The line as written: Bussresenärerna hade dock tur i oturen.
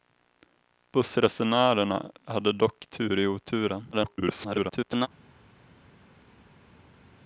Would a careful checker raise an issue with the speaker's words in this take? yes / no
yes